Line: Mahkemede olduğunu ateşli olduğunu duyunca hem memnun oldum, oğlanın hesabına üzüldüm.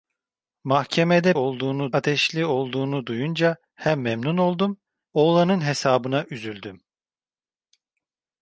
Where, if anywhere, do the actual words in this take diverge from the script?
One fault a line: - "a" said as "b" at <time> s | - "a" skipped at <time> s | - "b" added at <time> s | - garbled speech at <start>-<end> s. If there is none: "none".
none